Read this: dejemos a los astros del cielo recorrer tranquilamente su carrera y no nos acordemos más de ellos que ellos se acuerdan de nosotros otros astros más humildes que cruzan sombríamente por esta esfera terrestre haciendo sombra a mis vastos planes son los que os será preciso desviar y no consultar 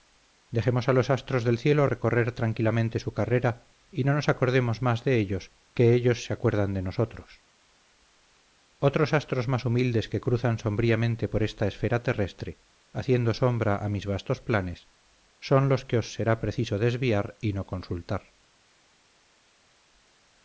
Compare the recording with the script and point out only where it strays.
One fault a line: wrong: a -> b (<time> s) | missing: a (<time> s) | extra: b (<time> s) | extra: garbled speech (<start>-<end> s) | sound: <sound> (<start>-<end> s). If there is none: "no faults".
no faults